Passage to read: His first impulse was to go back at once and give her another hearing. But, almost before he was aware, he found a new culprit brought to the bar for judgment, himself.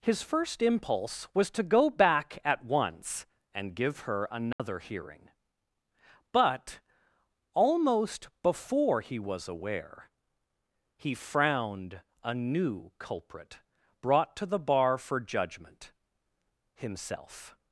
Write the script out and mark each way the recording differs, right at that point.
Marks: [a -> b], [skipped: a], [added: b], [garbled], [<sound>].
His first impulse was to go back at once and give her another [dropout] hearing. But, almost before he was aware, he [found -> frowned] a new culprit brought to the bar for judgment, himself.